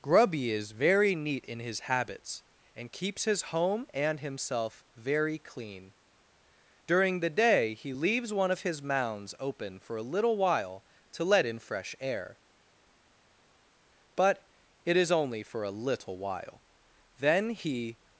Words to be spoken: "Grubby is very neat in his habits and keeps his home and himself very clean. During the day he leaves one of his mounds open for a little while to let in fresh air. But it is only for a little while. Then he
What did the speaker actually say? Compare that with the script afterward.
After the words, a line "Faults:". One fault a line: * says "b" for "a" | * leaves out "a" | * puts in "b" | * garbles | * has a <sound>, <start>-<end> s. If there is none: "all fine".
"Grubby is very neat in his habits and keeps his home and himself very clean. During the day he leaves one of his mounds open for a little while to let in fresh air. But it is only for a little while. Then he
Faults:
all fine